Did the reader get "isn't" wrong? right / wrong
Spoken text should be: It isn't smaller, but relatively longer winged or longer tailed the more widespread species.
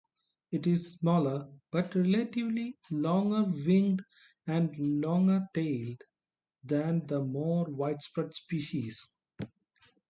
wrong